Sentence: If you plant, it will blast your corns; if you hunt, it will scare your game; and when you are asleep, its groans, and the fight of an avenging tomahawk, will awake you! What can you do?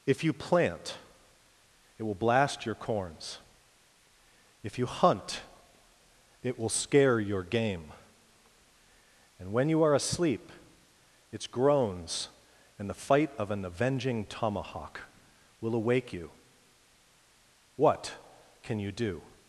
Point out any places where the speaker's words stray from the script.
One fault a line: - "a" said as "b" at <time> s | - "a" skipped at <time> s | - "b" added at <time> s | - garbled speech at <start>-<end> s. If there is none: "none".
none